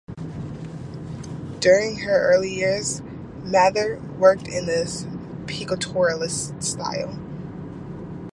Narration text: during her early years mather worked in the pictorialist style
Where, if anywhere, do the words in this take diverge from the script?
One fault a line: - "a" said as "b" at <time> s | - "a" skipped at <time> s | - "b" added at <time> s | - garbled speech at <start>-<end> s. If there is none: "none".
none